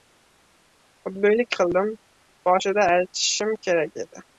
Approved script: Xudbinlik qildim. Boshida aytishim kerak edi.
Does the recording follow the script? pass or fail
pass